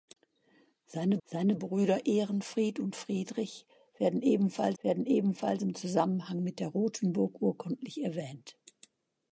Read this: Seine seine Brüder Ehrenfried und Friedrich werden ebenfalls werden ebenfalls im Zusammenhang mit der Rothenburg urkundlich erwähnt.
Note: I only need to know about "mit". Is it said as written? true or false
true